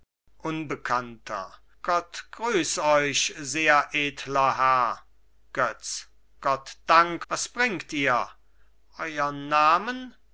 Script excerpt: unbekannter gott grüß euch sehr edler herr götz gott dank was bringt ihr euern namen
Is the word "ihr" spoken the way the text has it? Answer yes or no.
yes